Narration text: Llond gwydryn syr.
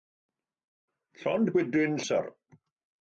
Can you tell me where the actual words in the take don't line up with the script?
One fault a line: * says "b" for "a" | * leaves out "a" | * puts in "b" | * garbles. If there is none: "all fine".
all fine